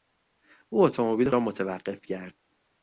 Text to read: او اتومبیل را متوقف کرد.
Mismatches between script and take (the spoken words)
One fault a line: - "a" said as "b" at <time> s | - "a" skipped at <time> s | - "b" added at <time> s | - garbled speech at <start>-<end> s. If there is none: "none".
none